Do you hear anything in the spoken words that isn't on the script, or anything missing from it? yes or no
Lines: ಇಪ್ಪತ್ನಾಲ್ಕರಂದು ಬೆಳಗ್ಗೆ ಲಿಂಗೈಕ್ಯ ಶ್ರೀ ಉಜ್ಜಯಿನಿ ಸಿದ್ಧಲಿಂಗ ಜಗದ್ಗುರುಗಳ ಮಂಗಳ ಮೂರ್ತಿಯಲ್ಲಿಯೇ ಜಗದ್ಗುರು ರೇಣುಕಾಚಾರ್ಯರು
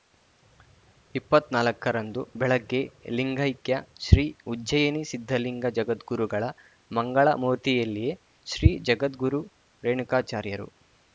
yes